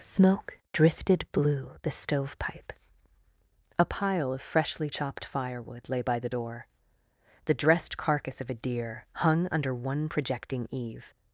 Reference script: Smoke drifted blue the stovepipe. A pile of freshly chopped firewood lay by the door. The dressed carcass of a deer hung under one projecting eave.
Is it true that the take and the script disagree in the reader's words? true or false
false